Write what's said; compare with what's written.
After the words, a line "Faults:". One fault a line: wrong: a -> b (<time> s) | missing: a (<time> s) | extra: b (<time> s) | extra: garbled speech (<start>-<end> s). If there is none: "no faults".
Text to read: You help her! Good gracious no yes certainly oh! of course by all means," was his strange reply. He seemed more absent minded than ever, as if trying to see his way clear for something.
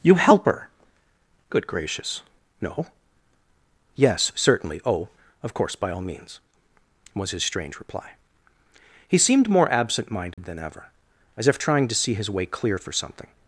You help her! Good gracious no yes certainly oh! of course by all means," was his strange reply. He seemed more absent minded than ever, as if trying to see his way clear for something.
Faults:
no faults